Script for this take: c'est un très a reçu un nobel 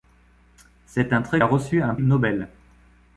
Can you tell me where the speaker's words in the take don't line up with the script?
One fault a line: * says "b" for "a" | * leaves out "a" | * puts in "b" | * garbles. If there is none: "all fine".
all fine